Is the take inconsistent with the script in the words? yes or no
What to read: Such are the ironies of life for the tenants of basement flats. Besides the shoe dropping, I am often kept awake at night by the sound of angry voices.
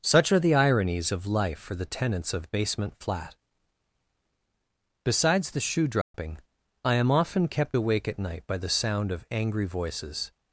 yes